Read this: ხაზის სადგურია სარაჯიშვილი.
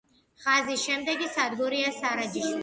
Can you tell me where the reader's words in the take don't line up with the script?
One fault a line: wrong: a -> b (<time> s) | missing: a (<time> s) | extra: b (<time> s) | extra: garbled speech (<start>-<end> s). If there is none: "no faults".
extra: შემდეგი (0.9 s)